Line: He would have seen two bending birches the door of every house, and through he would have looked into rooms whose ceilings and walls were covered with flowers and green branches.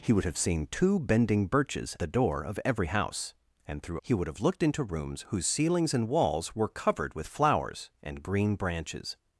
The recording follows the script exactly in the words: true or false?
true